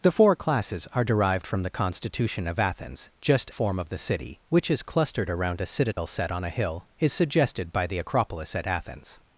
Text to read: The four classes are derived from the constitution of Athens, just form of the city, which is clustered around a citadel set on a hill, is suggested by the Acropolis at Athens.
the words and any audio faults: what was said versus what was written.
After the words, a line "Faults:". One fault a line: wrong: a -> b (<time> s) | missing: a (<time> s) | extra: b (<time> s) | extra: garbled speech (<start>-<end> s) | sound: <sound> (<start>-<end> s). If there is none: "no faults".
The four classes are derived from the constitution of Athens, just form of the city, which is clustered around a citadel set on a hill, is suggested by the Acropolis at Athens.
Faults:
sound: dropout (5.9-6.0 s)